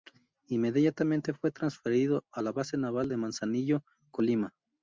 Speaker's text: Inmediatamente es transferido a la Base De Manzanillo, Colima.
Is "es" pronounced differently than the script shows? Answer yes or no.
yes